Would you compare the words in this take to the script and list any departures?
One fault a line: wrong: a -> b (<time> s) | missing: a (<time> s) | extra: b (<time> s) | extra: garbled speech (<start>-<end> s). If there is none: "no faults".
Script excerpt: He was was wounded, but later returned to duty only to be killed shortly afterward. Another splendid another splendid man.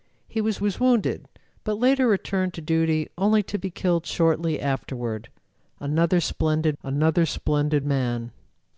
no faults